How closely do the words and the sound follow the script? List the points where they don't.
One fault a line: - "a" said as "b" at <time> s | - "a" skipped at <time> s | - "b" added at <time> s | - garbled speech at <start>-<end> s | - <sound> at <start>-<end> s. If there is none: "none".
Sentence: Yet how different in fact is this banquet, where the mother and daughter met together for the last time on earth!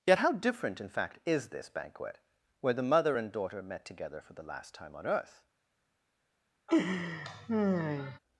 - laugh at 6.7-8.2 s